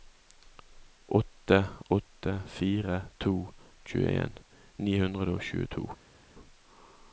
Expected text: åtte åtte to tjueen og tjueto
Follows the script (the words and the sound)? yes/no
no